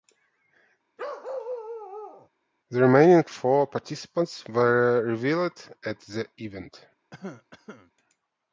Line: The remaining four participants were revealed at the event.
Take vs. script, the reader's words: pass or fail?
pass